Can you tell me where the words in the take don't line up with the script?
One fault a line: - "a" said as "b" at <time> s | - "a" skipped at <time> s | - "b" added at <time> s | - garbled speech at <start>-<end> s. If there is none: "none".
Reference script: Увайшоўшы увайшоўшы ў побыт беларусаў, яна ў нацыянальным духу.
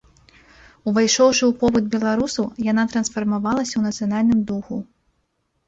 - "увайшоўшы" skipped at 1.4 s
- "трансфармавалася" added at 3.0 s